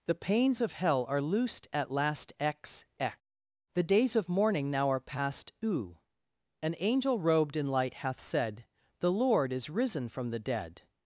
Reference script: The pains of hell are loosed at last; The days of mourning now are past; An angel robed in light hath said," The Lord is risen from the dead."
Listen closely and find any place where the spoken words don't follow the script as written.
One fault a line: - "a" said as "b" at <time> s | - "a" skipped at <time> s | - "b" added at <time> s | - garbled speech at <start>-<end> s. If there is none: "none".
- "x x" added at 2.4 s
- "u" added at 5.6 s